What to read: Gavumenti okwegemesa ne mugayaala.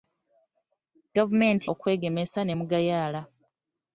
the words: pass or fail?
pass